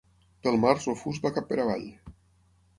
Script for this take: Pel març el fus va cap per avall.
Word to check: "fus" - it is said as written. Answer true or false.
true